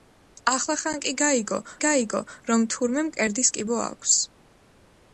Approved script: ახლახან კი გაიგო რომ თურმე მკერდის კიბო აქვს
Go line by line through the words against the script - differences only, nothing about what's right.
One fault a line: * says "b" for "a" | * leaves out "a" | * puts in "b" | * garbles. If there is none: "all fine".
* puts in "გაიგო"